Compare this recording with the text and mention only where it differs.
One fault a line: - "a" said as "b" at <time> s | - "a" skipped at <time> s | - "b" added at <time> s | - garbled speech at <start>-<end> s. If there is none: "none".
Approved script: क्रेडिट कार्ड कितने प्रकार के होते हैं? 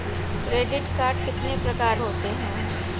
- "के" skipped at 2.0 s